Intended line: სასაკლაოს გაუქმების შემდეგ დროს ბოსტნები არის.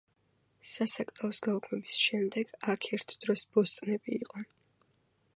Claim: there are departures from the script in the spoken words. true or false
true